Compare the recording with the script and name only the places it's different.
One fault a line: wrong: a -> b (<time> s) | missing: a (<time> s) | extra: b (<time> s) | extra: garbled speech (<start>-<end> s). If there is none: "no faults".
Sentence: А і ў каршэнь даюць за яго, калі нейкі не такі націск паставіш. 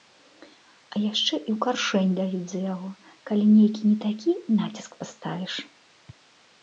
extra: яшчэ (1.0 s)